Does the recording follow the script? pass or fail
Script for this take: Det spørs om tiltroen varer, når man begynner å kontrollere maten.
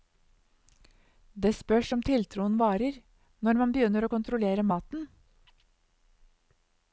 pass